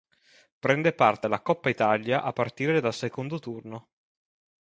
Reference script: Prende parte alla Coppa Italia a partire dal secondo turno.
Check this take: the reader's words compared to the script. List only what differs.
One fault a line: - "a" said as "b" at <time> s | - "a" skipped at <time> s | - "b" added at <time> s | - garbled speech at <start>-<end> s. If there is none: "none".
none